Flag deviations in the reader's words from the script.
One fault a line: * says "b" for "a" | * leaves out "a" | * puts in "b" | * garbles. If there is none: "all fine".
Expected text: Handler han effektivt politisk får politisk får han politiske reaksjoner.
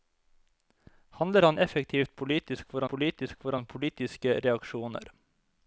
all fine